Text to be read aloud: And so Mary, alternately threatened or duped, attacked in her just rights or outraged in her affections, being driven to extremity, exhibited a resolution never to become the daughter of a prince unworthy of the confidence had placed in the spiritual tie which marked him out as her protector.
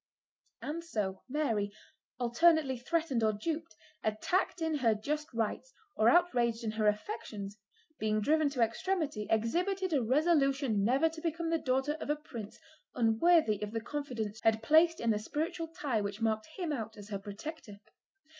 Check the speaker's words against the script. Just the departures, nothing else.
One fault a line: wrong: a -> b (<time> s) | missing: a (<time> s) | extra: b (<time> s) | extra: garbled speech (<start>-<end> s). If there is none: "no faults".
no faults